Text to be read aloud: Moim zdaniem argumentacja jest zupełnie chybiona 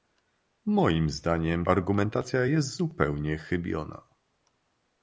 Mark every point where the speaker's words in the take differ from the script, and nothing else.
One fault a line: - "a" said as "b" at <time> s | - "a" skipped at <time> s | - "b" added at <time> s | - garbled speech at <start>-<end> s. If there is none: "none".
none